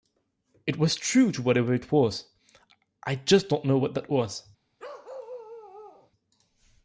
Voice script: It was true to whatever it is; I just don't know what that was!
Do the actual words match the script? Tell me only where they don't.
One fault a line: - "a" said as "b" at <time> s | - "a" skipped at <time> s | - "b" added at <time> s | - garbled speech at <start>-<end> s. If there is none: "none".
- "is" said as "was" at 1.9 s